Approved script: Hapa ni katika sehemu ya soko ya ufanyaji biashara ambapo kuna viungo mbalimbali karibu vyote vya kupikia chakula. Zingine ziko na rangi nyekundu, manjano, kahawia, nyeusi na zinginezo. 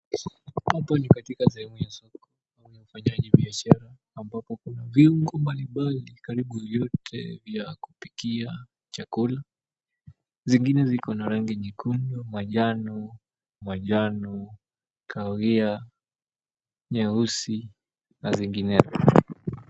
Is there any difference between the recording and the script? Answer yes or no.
yes